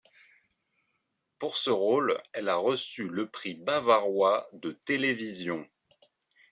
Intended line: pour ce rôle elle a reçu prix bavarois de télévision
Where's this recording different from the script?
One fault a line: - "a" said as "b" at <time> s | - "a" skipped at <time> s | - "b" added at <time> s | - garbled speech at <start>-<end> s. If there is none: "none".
- "le" added at 3.1 s